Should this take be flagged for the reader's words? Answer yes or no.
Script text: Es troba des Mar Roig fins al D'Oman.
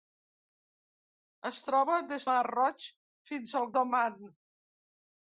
no